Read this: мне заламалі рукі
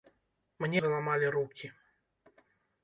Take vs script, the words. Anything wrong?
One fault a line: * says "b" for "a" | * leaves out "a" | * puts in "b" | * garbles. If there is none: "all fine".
all fine